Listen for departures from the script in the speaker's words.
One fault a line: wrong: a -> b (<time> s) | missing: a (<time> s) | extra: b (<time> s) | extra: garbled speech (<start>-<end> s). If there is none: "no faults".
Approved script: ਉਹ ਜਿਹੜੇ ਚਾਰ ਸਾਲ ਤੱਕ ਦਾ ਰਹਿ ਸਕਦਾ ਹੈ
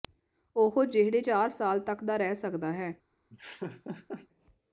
no faults